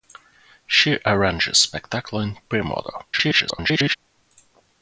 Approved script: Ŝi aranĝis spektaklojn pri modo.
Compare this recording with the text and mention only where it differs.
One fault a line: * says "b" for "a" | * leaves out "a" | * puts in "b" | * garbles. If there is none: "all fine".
* garbles